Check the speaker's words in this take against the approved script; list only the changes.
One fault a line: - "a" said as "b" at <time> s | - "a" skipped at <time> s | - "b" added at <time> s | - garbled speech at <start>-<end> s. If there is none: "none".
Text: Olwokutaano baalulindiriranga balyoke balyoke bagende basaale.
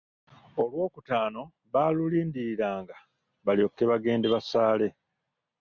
- "balyoke" skipped at 3.8 s